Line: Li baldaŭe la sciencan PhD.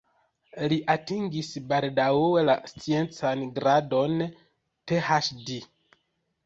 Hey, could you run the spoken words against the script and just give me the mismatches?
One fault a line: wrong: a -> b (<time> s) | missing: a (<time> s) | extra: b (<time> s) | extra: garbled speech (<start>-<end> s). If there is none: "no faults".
extra: atingis (0.9 s)
extra: gradon (3.6 s)